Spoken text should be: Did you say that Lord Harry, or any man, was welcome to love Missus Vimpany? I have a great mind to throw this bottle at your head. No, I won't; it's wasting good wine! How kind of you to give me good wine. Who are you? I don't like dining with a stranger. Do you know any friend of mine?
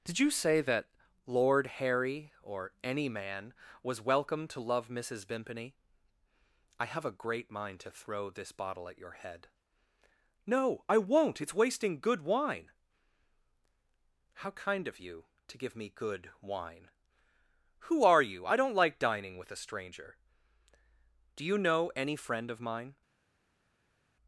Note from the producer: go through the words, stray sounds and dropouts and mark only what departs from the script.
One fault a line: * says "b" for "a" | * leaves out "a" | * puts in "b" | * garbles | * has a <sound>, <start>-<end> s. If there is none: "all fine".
all fine